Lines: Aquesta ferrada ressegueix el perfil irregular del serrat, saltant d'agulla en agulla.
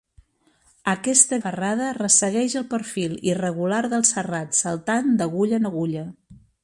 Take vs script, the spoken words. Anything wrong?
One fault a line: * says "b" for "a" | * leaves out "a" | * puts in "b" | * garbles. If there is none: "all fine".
all fine